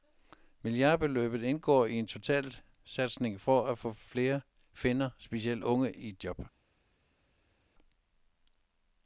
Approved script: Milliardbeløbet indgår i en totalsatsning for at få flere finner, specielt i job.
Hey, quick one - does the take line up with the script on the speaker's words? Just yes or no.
no